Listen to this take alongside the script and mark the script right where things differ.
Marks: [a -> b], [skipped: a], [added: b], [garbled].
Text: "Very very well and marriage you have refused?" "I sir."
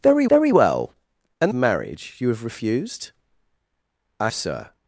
"Very very well and marriage you have refused?" "I sir."